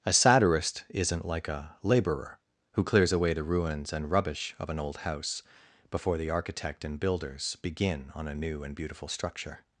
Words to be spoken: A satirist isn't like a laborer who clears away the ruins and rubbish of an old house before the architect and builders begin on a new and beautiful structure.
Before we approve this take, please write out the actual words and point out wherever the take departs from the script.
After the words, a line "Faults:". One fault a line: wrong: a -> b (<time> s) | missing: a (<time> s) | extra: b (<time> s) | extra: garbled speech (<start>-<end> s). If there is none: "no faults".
A satirist isn't like a laborer who clears away the ruins and rubbish of an old house before the architect and builders begin on a new and beautiful structure.
Faults:
no faults